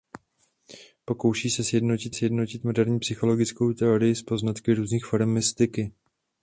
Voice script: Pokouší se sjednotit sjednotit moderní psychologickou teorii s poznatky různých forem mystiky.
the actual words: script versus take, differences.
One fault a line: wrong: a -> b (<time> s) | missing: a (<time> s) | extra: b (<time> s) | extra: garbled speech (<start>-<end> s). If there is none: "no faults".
no faults